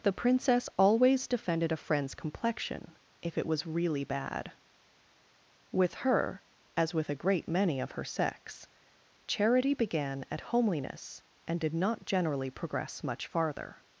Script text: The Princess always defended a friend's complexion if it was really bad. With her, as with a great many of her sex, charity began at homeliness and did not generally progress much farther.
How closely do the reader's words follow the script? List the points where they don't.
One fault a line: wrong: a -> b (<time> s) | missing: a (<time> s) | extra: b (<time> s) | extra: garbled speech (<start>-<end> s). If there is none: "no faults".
no faults